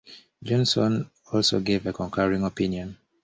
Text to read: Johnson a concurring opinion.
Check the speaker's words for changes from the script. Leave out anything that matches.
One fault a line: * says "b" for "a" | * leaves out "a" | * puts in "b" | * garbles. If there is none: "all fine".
* puts in "also gave"